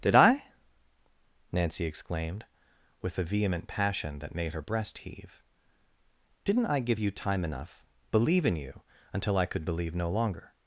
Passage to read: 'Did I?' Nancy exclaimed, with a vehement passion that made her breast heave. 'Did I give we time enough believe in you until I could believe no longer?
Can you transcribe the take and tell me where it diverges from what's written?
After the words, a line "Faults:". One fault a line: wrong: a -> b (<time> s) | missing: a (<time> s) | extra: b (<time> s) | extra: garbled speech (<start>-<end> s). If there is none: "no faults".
'Did I?' Nancy exclaimed, with a vehement passion that made her breast heave. 'Didn't I give you time enough believe in you until I could believe no longer?
Faults:
wrong: Did -> Didn't (6.4 s)
wrong: we -> you (7.0 s)